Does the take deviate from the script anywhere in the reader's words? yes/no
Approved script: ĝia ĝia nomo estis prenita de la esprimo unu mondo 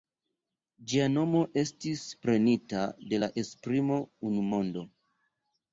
yes